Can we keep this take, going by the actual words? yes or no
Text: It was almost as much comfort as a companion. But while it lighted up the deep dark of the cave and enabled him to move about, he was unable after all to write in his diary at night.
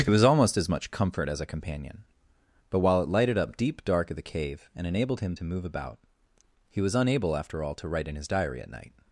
no